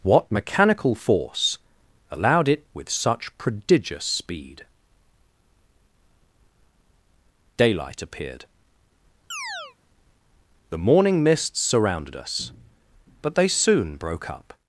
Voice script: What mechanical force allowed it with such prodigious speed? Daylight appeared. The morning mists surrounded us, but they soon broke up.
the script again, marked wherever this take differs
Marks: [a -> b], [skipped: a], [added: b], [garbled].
What mechanical force allowed it with such prodigious speed? Daylight appeared. The morning mists surrounded us, but they soon broke up.